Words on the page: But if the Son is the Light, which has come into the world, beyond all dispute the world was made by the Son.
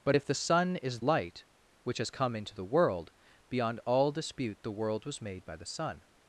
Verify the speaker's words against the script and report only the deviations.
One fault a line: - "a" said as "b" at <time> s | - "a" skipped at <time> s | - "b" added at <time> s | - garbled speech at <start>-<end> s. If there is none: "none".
- "the" skipped at 1.0 s